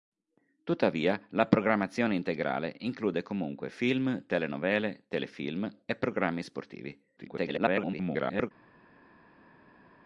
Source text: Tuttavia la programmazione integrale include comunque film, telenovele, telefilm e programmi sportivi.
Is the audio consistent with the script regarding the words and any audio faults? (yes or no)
no